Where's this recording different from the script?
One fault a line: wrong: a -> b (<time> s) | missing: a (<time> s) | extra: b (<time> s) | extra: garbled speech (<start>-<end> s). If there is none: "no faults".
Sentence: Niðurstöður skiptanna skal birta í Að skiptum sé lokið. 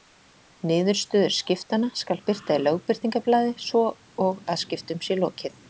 extra: Lögbirtingablaði svo og (2.6 s)